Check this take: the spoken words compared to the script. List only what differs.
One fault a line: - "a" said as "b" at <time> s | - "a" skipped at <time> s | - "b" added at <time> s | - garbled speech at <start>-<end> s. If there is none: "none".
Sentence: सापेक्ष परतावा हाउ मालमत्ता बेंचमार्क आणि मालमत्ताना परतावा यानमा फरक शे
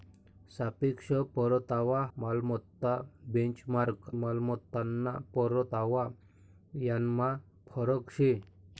- "हाउ" skipped at 2.0 s
- "आणि" skipped at 4.1 s